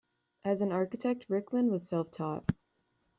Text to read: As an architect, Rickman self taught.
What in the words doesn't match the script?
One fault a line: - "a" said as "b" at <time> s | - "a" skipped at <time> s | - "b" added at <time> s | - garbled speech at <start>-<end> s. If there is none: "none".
- "was" added at 1.7 s